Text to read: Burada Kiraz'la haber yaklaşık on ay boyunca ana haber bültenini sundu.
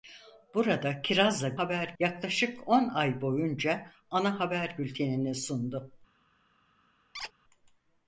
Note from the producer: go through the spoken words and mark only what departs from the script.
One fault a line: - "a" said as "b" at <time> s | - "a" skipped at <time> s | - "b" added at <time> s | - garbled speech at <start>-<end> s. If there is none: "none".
none